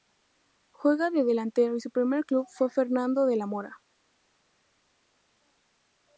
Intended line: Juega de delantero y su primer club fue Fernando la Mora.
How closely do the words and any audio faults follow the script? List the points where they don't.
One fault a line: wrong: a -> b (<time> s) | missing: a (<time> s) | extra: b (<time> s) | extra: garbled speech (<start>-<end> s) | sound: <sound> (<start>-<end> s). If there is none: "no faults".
extra: de (3.3 s)